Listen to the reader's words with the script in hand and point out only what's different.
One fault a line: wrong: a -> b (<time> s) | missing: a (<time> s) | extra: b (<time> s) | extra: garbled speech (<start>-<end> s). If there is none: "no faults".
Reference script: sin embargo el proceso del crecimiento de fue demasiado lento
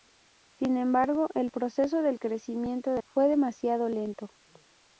no faults